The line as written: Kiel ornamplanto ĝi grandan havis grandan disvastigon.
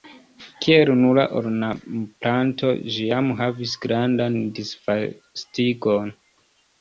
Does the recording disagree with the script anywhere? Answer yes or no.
yes